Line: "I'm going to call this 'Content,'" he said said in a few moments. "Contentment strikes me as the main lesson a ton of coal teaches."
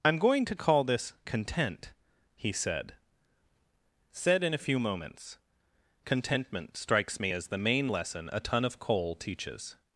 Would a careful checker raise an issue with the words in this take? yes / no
no